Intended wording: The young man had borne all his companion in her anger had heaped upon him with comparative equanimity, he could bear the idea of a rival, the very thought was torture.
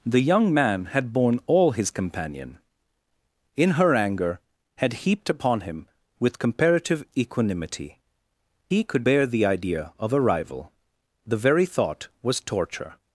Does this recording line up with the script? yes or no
yes